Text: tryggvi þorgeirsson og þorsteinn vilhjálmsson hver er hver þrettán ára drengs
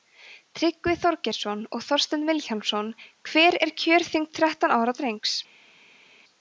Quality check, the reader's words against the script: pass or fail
fail